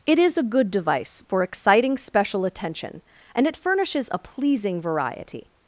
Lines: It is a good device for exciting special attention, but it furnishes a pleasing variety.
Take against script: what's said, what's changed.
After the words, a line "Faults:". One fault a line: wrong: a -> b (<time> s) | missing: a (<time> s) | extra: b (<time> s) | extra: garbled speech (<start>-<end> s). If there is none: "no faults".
It is a good device for exciting special attention, and it furnishes a pleasing variety.
Faults:
wrong: but -> and (3.3 s)